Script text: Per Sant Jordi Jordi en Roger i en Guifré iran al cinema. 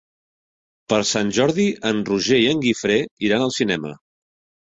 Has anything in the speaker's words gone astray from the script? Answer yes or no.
yes